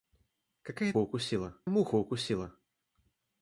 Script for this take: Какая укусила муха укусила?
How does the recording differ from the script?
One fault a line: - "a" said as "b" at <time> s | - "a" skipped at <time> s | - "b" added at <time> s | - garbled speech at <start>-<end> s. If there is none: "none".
none